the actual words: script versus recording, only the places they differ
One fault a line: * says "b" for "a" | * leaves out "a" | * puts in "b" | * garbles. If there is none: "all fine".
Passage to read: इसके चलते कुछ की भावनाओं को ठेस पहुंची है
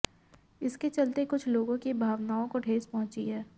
* puts in "लोगों"